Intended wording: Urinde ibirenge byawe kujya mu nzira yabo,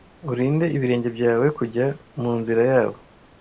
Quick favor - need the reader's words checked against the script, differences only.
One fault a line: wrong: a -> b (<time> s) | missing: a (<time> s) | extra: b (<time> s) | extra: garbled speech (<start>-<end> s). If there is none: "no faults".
no faults